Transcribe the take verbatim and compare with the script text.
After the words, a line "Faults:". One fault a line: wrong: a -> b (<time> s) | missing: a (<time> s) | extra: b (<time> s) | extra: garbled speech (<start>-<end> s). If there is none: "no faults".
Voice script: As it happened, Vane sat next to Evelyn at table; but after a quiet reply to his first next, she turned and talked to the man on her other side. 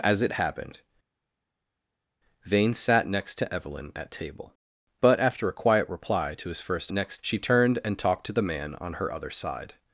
As it happened, Vane sat next to Evelyn at table; but after a quiet reply to his first next, she turned and talked to the man on her other side.
Faults:
no faults